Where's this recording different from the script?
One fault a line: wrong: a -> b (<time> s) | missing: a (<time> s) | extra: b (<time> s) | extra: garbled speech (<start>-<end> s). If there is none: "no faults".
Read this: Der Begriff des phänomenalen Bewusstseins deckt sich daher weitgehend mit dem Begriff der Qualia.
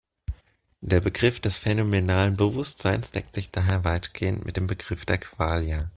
no faults